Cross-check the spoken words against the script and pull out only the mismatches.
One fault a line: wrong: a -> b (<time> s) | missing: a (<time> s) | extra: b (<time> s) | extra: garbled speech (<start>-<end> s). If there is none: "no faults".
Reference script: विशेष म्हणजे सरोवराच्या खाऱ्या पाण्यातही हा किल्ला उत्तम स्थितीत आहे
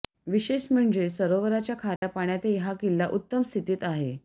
no faults